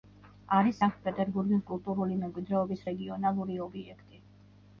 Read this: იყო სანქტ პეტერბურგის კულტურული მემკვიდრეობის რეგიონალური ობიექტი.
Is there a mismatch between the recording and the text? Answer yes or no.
yes